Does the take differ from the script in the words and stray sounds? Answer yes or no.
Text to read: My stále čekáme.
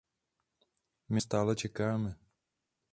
no